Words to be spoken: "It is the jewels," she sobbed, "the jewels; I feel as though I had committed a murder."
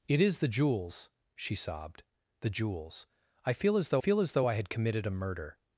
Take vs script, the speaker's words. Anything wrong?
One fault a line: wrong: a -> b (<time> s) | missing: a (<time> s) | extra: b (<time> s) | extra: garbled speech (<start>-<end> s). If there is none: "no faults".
extra: feel as though (4.0 s)